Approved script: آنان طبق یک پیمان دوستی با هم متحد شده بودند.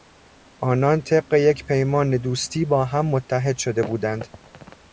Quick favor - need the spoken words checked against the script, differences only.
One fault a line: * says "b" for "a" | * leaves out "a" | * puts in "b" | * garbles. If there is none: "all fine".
all fine